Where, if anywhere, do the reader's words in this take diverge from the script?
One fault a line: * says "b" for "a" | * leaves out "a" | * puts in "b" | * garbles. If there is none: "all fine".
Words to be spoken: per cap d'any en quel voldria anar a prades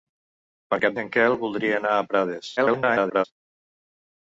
* leaves out "d'any"
* garbles